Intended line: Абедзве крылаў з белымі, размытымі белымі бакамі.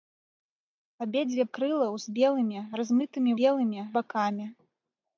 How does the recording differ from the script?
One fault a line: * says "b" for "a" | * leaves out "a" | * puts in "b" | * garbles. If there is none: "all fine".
all fine